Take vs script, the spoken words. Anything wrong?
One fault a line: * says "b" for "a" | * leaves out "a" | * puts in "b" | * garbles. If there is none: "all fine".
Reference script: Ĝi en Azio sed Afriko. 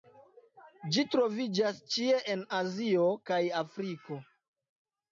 * puts in "troviĝas ĉie"
* says "kaj" for "sed"